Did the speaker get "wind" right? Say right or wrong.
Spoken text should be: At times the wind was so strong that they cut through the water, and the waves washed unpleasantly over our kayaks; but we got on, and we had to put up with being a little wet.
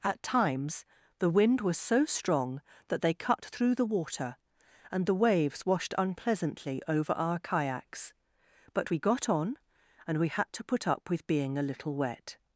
right